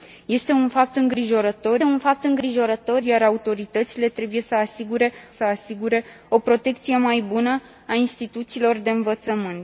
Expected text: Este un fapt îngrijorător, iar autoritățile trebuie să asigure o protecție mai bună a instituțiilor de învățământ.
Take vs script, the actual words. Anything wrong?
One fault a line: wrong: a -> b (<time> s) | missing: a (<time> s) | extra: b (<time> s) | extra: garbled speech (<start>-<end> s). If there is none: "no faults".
extra: un fapt îngrijorător (1.8 s)
extra: să asigure (5.3 s)